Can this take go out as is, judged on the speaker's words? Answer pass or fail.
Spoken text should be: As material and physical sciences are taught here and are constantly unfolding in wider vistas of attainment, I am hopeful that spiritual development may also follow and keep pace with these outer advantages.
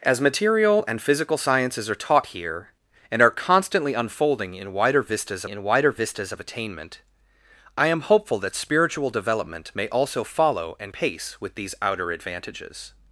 fail